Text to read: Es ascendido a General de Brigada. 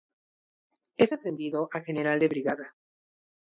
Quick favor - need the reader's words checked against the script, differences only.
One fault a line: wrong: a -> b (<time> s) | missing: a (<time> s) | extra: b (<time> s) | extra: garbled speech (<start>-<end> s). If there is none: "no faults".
no faults